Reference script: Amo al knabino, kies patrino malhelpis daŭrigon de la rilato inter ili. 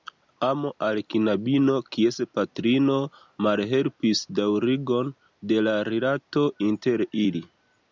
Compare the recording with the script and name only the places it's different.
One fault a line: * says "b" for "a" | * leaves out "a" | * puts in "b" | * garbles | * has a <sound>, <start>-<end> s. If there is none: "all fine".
all fine